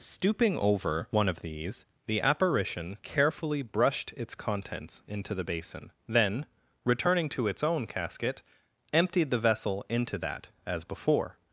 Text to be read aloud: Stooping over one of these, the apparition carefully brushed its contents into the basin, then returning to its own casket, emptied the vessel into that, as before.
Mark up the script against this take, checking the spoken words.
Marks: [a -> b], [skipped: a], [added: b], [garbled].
Stooping over one of these, the apparition carefully brushed its contents into the basin, then returning to its own casket, emptied the vessel into that, as before.